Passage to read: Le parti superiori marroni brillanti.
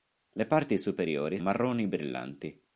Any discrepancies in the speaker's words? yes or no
no